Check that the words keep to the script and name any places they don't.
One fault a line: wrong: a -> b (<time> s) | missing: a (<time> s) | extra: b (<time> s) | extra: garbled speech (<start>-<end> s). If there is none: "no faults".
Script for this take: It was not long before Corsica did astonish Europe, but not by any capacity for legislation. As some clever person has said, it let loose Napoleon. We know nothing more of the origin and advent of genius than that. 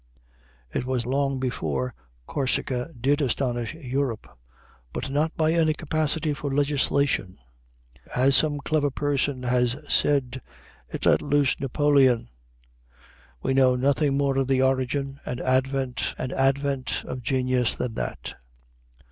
missing: not (1.1 s)
extra: and advent (16.2 s)